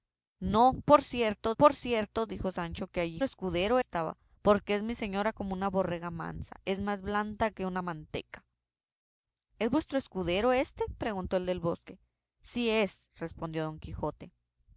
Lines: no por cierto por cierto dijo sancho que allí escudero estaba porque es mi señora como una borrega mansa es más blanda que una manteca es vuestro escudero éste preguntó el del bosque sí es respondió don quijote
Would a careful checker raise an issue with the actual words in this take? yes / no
no